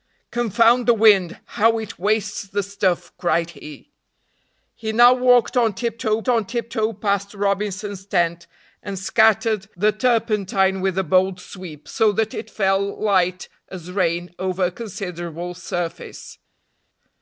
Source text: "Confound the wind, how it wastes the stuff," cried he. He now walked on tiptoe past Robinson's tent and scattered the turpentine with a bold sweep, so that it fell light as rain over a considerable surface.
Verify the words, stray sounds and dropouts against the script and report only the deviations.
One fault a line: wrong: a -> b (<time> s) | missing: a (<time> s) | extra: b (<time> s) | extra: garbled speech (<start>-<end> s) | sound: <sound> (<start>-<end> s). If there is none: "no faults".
extra: on tiptoe (6.3 s)